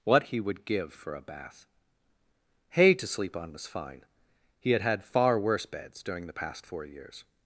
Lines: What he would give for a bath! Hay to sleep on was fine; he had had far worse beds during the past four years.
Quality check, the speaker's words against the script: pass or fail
pass